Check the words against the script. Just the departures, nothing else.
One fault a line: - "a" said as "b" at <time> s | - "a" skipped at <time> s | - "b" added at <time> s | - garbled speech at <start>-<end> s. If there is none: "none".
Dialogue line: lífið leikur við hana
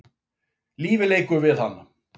none